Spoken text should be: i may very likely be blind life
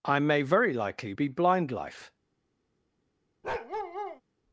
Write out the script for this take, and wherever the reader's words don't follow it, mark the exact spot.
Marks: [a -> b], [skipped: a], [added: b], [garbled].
i may very likely be blind life